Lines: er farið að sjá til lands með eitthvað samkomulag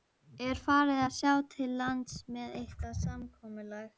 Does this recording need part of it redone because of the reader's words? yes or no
no